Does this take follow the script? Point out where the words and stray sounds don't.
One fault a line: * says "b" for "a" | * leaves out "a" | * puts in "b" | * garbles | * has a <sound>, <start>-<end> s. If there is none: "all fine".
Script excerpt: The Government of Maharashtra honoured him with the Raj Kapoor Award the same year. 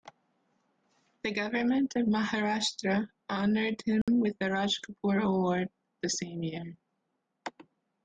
* has a dropout, 4.0-4.1 s